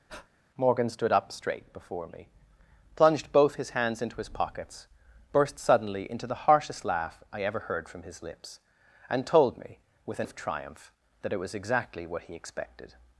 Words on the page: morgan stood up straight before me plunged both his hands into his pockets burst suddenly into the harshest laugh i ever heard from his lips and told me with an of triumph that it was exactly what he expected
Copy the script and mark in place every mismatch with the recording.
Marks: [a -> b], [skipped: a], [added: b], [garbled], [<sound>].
[breath] morgan stood up straight before me plunged both his hands into his pockets burst suddenly into the harshest laugh i ever heard from his lips and told me with an of triumph that it was exactly what he expected